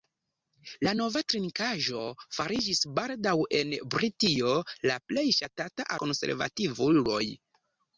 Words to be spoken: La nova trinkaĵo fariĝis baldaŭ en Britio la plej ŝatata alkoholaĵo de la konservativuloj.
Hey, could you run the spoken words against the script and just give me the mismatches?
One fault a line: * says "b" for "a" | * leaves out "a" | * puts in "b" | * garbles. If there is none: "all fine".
* leaves out "alkoholaĵo de la"